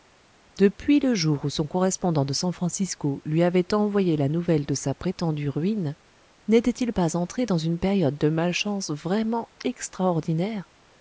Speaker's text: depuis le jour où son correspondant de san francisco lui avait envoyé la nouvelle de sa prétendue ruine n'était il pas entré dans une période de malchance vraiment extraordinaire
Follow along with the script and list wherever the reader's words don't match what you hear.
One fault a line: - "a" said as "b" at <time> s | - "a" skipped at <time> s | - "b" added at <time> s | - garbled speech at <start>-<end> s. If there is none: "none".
none